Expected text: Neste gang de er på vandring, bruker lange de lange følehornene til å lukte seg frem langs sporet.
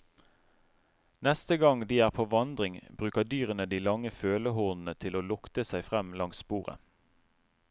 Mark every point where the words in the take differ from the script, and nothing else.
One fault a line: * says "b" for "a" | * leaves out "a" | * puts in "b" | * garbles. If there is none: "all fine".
* says "dyrene" for "lange"